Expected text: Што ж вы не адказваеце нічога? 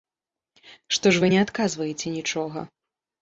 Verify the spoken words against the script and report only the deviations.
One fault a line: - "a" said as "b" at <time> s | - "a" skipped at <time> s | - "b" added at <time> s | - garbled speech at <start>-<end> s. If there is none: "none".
none